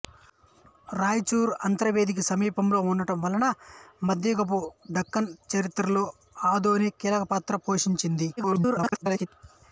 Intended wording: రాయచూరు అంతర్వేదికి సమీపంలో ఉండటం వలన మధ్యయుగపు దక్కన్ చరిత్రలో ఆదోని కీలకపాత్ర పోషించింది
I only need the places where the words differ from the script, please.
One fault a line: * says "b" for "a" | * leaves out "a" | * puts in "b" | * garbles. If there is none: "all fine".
* garbles